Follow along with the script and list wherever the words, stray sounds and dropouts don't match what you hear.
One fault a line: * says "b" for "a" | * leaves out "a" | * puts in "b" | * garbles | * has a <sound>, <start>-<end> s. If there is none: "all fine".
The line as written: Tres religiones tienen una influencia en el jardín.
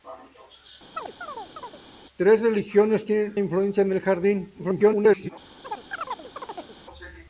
* has a chirp, 1.0-1.8 s
* leaves out "una"
* garbles
* has a chirp, 5.6-6.8 s